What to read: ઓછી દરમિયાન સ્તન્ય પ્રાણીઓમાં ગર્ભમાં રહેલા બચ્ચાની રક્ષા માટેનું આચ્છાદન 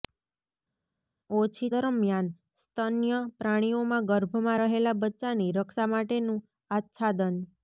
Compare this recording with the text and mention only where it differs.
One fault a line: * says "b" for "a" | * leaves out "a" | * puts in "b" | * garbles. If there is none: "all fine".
all fine